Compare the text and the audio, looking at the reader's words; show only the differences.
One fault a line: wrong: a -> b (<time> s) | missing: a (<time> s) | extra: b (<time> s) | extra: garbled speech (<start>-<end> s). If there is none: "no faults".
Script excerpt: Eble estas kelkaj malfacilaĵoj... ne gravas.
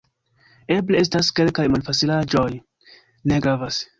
no faults